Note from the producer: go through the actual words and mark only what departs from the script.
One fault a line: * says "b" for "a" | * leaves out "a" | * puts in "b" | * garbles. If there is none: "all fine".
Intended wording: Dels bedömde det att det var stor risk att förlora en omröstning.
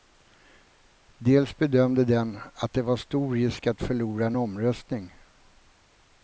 * says "den" for "det"